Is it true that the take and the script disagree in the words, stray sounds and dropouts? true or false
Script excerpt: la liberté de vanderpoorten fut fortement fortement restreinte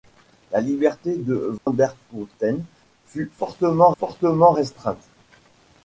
true